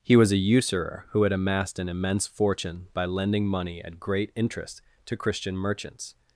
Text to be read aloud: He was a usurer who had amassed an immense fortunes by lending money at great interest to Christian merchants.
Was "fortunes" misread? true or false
true